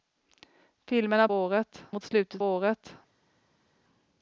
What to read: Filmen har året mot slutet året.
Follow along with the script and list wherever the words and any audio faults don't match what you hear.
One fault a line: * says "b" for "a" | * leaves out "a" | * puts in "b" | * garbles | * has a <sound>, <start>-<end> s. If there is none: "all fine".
all fine